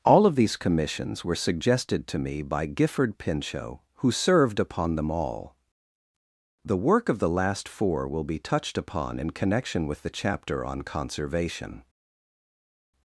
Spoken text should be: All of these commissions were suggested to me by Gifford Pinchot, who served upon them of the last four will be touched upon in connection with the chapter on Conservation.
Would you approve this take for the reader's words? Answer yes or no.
no